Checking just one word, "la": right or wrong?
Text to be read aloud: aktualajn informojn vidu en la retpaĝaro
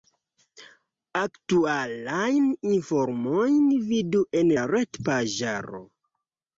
right